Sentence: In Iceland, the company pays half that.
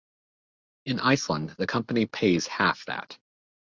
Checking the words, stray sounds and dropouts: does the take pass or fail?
pass